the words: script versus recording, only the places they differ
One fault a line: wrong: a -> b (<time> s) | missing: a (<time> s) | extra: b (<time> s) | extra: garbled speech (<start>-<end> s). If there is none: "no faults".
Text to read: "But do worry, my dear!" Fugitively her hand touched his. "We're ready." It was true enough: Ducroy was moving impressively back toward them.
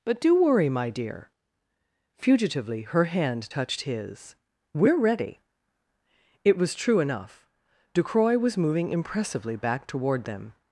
no faults